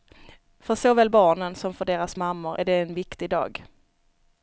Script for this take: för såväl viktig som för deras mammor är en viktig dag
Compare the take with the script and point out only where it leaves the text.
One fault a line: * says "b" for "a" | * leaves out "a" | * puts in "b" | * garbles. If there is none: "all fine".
* says "barnen" for "viktig"
* puts in "det"